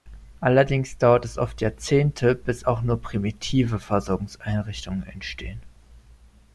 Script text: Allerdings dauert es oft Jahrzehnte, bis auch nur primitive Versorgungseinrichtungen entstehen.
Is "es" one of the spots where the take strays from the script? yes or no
no